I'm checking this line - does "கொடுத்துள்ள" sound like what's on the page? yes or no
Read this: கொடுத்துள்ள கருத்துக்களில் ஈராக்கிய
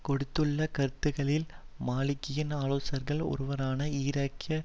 yes